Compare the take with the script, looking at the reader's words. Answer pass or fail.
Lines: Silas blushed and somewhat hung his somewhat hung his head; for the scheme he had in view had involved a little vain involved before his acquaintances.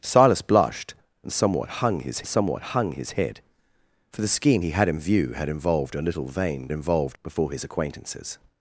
pass